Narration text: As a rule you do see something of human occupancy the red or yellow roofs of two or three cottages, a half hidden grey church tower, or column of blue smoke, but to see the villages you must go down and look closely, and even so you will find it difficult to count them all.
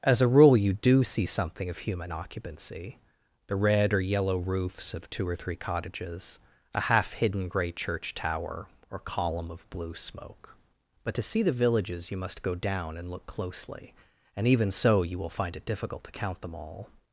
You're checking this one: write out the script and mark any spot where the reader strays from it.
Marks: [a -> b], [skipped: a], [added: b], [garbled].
As a rule you do see something of human occupancy the red or yellow roofs of two or three cottages, a half hidden grey church tower, or column of blue smoke, but to see the villages you must go down and look closely, and even so you will find it difficult to count them all.